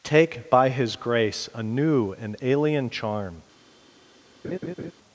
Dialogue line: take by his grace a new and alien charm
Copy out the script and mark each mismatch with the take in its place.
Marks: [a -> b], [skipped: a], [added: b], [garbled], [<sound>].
take by his grace a new and alien charm [laugh]